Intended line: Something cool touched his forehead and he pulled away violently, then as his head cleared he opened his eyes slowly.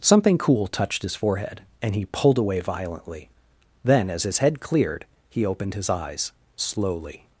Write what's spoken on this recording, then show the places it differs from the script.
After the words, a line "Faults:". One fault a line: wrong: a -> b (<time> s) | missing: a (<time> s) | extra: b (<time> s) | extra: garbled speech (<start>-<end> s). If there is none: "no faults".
Something cool touched his forehead and he pulled away violently, then as his head cleared he opened his eyes slowly.
Faults:
no faults